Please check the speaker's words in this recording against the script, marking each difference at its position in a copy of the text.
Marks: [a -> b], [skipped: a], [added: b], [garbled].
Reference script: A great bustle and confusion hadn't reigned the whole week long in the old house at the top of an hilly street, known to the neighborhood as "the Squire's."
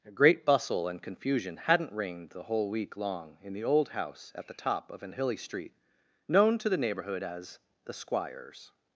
A great bustle and confusion hadn't reigned the whole week long in the old house at the top of an hilly street, known to the neighborhood as "the Squire's."